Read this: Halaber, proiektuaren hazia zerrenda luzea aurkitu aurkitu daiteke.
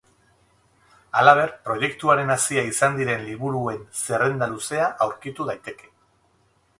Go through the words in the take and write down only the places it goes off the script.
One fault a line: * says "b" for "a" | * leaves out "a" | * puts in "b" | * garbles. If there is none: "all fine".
* puts in "izan diren liburuen"
* leaves out "aurkitu"